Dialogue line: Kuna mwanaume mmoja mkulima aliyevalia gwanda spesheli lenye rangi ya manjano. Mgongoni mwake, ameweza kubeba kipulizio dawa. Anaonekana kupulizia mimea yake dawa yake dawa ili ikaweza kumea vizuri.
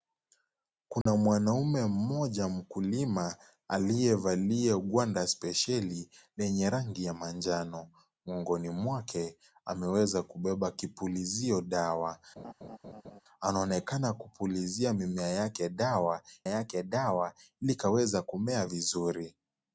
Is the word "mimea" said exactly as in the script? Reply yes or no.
yes